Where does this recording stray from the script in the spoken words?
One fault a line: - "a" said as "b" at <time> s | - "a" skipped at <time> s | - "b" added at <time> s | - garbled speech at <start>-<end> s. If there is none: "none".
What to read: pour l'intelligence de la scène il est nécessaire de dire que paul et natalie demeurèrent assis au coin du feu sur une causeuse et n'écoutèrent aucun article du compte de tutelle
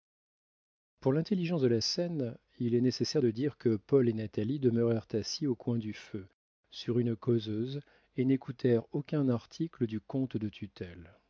none